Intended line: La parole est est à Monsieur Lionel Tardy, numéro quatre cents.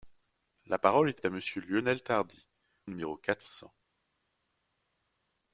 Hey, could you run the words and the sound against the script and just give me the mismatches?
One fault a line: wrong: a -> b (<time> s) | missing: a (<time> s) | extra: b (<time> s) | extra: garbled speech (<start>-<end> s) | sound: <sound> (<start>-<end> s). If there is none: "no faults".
no faults